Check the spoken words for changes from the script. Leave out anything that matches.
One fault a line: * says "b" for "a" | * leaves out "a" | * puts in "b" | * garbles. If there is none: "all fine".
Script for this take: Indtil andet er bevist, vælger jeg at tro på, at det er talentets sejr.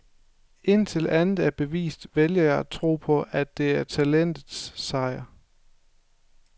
all fine